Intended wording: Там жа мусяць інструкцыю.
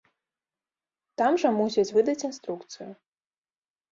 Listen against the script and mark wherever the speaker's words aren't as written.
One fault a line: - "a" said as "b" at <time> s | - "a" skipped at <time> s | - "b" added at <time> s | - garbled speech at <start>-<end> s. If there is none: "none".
- "выдаць" added at 2.0 s